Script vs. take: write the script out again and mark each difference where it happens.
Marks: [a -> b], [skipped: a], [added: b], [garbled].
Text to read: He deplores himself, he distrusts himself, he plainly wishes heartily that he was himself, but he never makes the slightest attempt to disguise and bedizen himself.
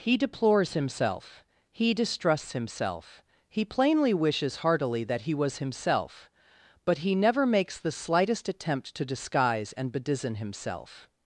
He deplores himself, he distrusts himself, he plainly wishes heartily that he was himself, but he never makes the slightest attempt to disguise and bedizen himself.